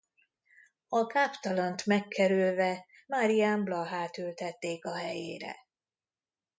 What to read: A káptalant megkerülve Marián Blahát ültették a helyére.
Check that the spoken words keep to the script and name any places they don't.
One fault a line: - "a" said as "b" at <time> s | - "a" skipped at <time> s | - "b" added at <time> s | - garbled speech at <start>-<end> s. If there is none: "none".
none